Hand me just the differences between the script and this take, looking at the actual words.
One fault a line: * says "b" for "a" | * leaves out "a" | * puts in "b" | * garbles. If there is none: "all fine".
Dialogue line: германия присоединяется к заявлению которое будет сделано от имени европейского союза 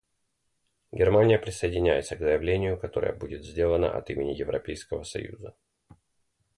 all fine